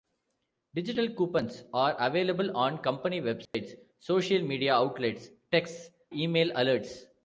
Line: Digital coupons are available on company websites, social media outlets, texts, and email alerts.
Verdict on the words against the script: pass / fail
fail